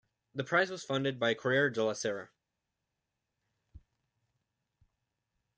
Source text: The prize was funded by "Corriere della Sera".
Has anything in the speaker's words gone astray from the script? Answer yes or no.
no